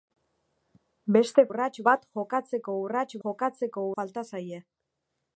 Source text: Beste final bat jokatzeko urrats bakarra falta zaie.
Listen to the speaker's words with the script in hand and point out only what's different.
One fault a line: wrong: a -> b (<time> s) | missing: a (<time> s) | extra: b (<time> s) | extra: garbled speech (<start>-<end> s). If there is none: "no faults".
wrong: final -> urrats (1.5 s)
wrong: bakarra -> jokatzeko (3.3 s)